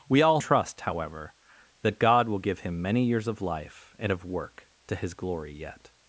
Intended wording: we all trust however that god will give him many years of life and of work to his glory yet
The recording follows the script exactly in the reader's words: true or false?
true